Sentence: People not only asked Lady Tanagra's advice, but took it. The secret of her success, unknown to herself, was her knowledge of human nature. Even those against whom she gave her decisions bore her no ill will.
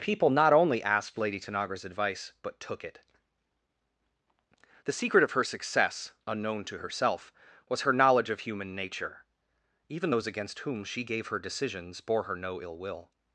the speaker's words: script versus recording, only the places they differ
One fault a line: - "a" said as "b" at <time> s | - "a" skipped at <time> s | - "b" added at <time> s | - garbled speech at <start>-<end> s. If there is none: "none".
none